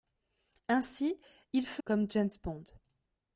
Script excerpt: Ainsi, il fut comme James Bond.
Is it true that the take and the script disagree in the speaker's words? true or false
false